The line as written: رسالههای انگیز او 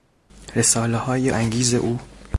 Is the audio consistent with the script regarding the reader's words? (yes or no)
yes